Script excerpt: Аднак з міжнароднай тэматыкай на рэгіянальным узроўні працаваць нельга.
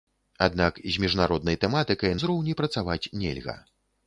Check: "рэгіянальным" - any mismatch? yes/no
yes